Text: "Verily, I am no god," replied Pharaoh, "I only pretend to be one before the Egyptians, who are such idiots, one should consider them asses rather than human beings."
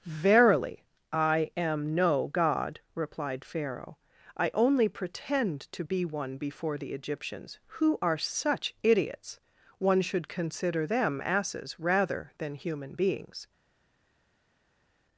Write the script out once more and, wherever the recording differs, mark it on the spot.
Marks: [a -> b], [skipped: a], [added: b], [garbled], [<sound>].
"Verily, I am no god," replied Pharaoh, "I only pretend to be one before the Egyptians, who are such idiots, one should consider them asses rather than human beings."